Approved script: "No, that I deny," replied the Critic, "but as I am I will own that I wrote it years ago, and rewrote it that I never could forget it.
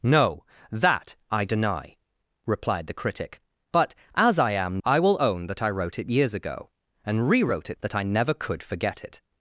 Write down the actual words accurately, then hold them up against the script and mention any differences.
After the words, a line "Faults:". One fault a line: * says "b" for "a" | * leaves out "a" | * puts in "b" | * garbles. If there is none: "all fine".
"No, that I deny," replied the Critic, "but as I am I will own that I wrote it years ago, and rewrote it that I never could forget it.
Faults:
all fine